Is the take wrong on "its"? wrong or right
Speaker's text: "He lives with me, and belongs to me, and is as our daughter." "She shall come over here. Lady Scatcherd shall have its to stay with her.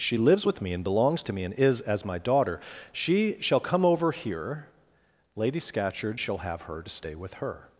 wrong